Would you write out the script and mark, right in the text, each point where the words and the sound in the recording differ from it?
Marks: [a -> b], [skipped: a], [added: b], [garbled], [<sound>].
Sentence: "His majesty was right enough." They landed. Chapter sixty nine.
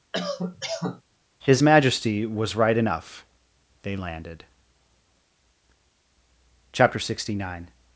[cough] "His majesty was right enough." They landed. Chapter sixty nine.